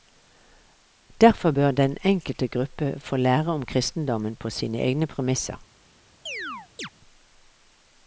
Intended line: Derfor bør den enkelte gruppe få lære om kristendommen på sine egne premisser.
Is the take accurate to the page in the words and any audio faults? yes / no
no